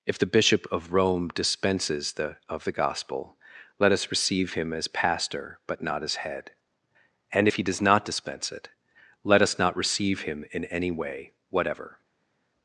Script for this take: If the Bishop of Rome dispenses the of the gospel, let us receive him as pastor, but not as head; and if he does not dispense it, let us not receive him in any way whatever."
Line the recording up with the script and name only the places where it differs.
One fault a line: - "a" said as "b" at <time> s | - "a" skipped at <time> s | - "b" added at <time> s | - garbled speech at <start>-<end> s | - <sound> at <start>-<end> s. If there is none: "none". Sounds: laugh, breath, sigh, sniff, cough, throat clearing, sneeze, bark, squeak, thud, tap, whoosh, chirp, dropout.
none